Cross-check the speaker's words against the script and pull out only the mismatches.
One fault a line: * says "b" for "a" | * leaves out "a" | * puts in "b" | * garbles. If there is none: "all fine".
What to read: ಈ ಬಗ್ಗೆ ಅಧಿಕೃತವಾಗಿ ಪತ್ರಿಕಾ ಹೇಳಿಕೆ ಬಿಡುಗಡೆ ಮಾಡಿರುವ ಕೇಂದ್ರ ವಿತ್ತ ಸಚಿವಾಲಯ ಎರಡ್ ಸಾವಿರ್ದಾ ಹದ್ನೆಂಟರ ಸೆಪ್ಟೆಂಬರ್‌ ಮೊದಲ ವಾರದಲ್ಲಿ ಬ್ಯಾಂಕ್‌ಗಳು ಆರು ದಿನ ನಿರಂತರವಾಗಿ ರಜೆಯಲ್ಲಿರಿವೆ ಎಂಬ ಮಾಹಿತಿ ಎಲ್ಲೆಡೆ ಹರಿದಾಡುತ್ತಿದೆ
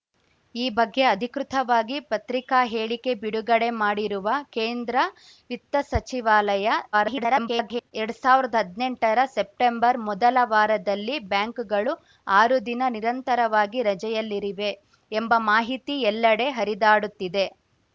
* garbles